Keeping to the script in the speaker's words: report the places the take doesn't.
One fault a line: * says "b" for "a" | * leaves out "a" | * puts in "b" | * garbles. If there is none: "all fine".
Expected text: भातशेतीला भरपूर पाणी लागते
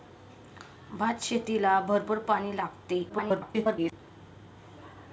* garbles